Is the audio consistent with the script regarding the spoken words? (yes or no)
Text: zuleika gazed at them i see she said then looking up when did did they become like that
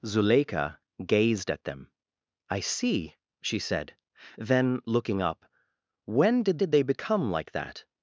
yes